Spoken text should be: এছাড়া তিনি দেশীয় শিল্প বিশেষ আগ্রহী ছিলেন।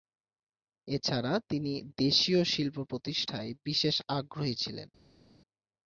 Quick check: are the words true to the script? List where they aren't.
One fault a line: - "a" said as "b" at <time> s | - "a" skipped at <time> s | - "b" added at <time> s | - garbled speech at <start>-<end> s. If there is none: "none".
- "প্রতিষ্ঠায়" added at 2.8 s